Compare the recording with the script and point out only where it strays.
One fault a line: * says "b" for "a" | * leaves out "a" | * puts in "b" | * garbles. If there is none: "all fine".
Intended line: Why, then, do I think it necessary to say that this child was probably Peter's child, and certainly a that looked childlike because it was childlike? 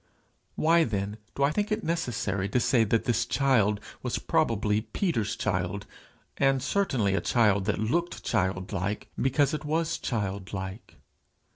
* puts in "child"